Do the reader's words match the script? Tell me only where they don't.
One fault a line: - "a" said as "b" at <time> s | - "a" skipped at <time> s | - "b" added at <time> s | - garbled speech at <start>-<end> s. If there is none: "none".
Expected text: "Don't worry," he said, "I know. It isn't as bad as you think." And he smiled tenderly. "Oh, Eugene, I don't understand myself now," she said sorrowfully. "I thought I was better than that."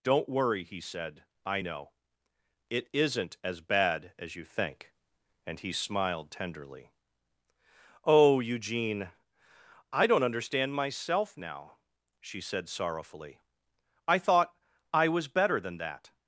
none